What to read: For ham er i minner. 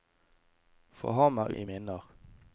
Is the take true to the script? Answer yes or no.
yes